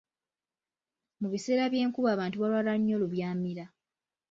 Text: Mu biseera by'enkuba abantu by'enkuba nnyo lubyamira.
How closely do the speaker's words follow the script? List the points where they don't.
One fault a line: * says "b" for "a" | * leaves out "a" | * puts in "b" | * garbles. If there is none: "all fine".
* says "balwala" for "by'enkuba"